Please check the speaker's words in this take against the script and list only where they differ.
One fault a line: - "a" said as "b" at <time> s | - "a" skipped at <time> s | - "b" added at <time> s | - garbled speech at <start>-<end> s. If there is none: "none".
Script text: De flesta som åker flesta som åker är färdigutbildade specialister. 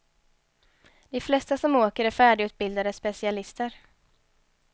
- "flesta som åker" skipped at 2.0 s